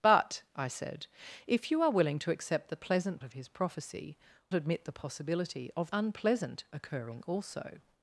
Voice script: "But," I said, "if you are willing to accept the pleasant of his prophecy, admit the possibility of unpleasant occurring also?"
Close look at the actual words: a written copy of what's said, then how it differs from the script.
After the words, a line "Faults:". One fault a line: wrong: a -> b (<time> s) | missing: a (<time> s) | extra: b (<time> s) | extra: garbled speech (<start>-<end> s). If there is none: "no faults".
"But," I said, "if you are willing to accept the pleasant of his prophecy, admit the possibility of unpleasant occurring also?"
Faults:
no faults